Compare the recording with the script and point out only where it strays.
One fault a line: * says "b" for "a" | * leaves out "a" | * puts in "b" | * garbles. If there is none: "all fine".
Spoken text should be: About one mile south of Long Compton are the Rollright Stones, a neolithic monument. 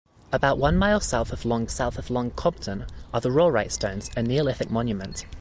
* puts in "south of Long"